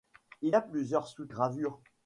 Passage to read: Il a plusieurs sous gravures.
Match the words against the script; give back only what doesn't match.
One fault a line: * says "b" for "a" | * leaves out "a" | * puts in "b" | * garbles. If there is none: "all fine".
all fine